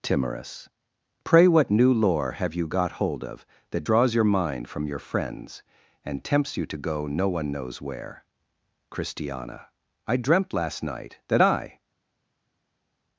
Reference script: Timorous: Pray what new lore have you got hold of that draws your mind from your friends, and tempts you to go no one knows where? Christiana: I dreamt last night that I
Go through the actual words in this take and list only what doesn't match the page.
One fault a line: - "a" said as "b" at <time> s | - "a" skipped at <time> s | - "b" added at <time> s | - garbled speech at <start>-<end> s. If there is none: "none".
none